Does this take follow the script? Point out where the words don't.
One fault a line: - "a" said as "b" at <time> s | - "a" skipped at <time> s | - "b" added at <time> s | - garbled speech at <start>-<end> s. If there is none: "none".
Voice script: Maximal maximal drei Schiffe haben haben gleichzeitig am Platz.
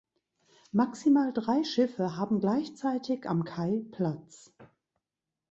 - "maximal" skipped at 1.3 s
- "haben" skipped at 2.4 s
- "Kai" added at 3.4 s